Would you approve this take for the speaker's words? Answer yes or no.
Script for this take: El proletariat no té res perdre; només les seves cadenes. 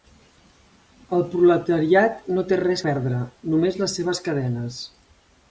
yes